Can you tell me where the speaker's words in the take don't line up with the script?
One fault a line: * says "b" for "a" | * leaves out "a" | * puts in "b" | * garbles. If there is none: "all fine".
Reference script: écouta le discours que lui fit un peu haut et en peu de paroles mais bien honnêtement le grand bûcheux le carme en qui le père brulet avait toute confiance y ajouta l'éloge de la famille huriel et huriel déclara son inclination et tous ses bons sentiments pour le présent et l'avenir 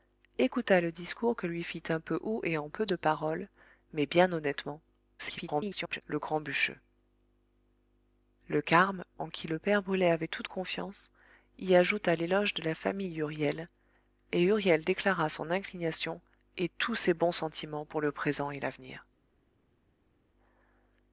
* garbles